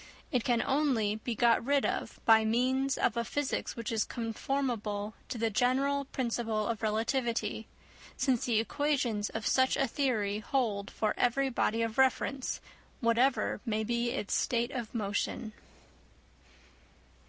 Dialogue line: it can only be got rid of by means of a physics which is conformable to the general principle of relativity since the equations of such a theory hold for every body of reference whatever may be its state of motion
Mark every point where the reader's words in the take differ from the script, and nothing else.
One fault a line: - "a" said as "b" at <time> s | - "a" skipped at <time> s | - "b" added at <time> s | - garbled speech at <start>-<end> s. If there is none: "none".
none